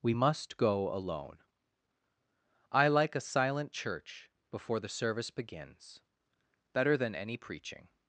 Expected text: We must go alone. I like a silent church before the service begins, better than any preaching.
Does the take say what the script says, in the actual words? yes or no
yes